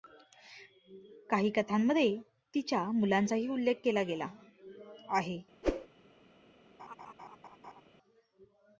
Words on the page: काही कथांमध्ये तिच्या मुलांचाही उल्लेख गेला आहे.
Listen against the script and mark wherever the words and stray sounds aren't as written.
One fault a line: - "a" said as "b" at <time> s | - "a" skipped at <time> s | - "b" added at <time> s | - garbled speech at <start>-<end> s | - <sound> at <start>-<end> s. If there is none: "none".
- "केला" added at 3.8 s
- whoosh at 5.6-5.9 s
- laugh at 6.8-7.8 s